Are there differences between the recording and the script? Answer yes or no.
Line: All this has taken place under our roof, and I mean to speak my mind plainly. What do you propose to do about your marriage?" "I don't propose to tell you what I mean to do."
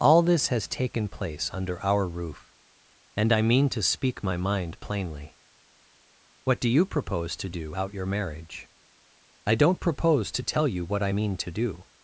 yes